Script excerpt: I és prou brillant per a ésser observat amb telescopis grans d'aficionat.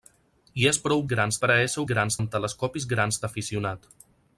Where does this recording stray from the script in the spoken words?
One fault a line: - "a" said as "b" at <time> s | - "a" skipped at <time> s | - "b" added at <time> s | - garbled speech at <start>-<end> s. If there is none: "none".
- "brillant" said as "grans" at 1.1 s
- "observat" said as "grans" at 1.9 s